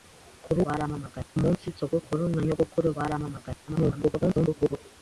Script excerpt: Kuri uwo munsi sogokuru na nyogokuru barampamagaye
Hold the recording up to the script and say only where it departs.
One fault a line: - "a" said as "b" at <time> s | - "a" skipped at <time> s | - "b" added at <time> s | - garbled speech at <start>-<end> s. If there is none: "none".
- "uwo" said as "barampamagaye" at 0.7 s
- garbled speech at 3.7-4.8 s